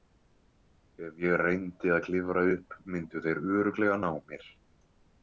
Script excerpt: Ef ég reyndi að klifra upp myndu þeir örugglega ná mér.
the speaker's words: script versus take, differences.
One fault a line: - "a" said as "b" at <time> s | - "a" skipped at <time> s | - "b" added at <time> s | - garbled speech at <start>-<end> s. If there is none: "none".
none